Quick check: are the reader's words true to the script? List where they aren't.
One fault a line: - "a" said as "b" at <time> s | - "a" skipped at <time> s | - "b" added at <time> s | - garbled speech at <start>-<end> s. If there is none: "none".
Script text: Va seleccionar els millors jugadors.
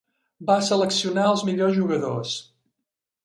none